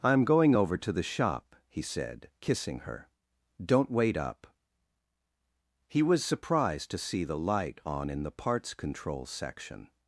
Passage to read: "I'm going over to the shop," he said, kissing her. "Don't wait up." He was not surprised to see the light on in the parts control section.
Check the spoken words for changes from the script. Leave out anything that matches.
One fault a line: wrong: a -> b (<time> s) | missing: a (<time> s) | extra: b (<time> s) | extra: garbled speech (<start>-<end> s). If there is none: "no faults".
missing: not (6.2 s)